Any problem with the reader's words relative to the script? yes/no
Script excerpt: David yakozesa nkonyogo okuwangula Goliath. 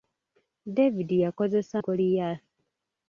yes